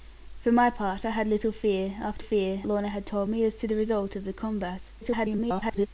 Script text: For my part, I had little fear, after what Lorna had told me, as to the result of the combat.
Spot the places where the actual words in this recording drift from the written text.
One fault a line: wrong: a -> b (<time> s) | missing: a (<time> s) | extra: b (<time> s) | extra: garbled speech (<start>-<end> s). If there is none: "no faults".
wrong: what -> fear (2.2 s)
extra: garbled speech (5.0-5.9 s)